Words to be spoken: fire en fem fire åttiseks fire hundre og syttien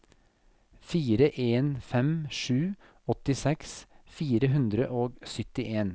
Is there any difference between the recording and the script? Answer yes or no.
yes